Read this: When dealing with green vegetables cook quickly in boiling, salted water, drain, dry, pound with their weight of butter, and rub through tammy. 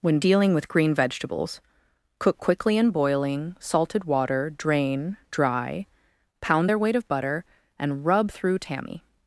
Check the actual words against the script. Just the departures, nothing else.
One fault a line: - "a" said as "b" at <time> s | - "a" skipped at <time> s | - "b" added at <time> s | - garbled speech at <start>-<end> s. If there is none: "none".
- "with" skipped at 6.7 s